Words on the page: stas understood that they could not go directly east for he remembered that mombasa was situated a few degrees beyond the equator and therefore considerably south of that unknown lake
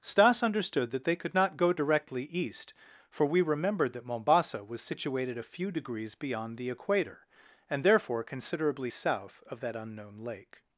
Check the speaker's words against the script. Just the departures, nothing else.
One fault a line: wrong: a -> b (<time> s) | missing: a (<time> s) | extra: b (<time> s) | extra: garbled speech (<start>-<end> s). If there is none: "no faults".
wrong: he -> we (3.2 s)